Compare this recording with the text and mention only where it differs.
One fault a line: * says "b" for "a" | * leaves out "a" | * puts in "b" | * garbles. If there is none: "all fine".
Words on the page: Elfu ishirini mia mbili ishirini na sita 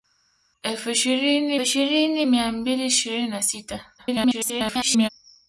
* puts in "ishirini"
* garbles